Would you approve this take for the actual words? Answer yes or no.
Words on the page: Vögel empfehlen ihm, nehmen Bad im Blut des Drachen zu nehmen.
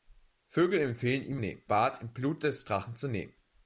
yes